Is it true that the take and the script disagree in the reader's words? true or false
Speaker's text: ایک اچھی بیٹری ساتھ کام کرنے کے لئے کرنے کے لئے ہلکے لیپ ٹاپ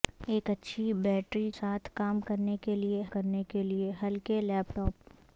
false